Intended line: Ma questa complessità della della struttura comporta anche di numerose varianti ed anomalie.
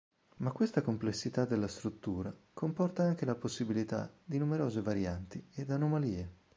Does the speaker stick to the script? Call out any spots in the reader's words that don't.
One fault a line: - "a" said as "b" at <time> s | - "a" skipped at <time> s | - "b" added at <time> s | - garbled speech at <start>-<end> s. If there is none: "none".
- "della" skipped at 1.7 s
- "la possibilità" added at 3.2 s